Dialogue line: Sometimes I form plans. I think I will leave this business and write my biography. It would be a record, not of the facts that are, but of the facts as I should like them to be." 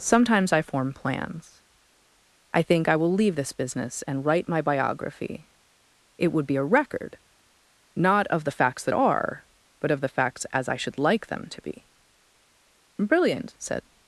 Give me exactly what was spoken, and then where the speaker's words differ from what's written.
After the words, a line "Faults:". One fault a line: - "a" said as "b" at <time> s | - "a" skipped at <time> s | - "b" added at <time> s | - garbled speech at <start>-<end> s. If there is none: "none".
Sometimes I form plans. I think I will leave this business and write my biography. It would be a record, not of the facts that are, but of the facts as I should like them to be." "Brilliant," said
Faults:
- "Brilliant said" added at 13.0 s